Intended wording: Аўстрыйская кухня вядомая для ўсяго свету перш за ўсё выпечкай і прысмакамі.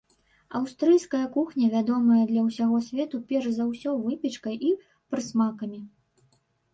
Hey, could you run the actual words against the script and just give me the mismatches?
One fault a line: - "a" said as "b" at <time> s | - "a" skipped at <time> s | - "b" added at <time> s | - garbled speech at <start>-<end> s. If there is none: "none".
none